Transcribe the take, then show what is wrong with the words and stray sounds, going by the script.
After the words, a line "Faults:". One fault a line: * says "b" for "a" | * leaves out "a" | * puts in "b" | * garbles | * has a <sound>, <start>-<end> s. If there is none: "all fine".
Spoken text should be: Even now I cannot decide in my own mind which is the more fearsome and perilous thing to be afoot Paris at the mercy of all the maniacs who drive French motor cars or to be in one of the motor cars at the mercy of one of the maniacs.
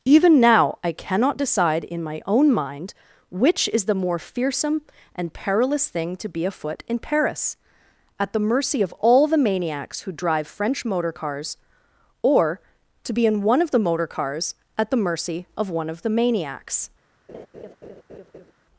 Even now I cannot decide in my own mind which is the more fearsome and perilous thing to be afoot in Paris at the mercy of all the maniacs who drive French motor cars or to be in one of the motor cars at the mercy of one of the maniacs.
Faults:
* puts in "in"
* has a laugh, 17.3-18.5 s